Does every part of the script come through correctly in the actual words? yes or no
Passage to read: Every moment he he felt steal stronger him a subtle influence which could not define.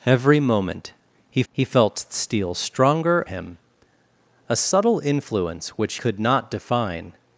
yes